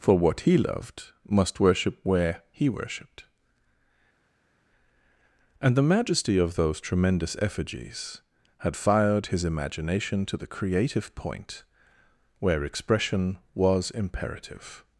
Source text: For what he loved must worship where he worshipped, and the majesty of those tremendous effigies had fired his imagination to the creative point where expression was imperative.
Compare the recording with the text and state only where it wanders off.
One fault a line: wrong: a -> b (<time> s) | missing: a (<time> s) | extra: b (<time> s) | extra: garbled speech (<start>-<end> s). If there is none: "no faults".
no faults